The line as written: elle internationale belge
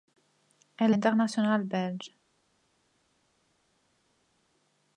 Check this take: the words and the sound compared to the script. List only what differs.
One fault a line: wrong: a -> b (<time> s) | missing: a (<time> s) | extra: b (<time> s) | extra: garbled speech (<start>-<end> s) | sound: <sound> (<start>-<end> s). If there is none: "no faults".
no faults